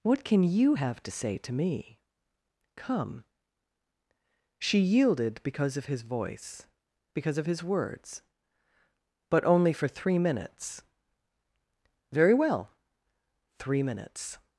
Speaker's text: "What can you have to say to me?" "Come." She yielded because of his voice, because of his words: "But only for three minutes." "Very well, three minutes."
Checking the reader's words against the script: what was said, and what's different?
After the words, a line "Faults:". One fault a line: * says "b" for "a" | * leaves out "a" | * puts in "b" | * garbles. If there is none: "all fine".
"What can you have to say to me?" "Come." She yielded because of his voice, because of his words: "But only for three minutes." "Very well, three minutes."
Faults:
all fine